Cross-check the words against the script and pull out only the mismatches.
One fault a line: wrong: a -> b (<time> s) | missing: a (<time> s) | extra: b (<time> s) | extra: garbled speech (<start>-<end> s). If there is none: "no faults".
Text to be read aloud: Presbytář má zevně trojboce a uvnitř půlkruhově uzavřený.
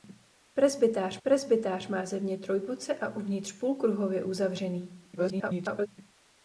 extra: presbytář (1.2 s)
extra: garbled speech (5.2-5.9 s)